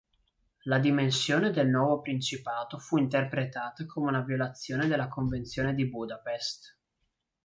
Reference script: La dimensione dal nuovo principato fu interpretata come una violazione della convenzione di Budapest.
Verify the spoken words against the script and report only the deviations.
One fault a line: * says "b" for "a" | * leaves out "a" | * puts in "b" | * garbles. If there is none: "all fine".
* says "del" for "dal"